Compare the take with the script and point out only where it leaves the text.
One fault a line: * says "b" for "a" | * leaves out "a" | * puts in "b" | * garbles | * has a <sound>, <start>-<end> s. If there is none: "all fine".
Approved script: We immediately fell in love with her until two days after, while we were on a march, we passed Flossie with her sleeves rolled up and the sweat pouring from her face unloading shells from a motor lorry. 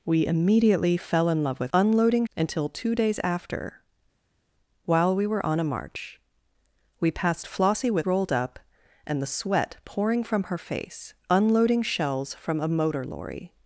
* says "unloading" for "her"
* leaves out "her sleeves"